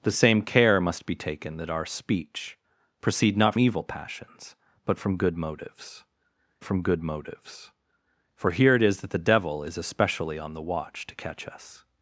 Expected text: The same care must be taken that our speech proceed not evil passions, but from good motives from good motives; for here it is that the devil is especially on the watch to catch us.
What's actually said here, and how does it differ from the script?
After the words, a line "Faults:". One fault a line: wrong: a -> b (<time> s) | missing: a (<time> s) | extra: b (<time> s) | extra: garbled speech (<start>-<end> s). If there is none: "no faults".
The same care must be taken that our speech proceed not evil passions, but from good motives from good motives; for here it is that the devil is especially on the watch to catch us.
Faults:
no faults